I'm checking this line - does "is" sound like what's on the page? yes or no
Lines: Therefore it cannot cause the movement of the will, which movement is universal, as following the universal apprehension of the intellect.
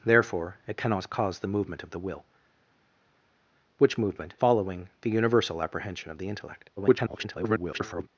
no